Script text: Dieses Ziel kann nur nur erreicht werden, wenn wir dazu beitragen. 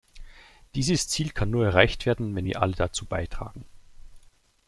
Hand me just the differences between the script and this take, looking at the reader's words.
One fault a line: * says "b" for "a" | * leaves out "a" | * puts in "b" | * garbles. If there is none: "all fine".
* leaves out "nur"
* puts in "alle"